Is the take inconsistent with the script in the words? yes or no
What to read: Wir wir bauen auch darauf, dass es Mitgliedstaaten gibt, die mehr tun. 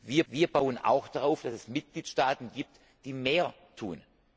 no